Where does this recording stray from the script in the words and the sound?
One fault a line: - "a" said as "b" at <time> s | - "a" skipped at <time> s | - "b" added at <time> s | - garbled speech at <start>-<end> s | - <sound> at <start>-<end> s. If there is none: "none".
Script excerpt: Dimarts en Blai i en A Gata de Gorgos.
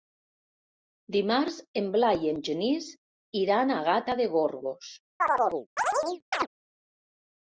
- "Genís iran" added at 2.5 s
- chirp at 5.2-6.5 s